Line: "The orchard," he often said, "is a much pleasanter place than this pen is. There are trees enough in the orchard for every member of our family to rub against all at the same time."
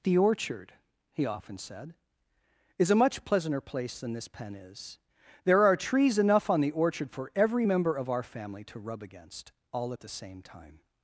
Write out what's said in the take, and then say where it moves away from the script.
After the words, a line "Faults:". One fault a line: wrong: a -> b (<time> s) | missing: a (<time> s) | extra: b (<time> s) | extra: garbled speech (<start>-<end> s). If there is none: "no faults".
"The orchard," he often said, "is a much pleasanter place than this pen is. There are trees enough on the orchard for every member of our family to rub against all at the same time."
Faults:
wrong: in -> on (6.5 s)